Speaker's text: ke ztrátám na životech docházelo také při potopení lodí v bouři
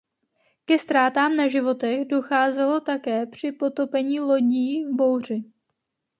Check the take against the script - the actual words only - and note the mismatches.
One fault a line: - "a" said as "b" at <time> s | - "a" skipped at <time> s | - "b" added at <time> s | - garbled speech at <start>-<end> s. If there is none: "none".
none